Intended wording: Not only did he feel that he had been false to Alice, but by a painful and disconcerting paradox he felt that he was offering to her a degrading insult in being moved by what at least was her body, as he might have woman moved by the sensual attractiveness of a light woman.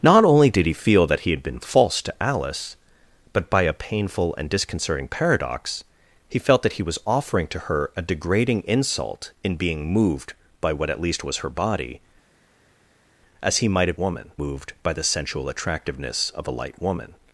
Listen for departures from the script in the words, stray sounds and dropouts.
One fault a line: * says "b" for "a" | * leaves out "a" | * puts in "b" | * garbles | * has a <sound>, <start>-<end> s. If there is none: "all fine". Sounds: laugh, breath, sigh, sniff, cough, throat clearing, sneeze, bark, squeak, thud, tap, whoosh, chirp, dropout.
all fine